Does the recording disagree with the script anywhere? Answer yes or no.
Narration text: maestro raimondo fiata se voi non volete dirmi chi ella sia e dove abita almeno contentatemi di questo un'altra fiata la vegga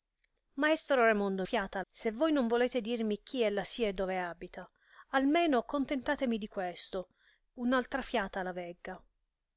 no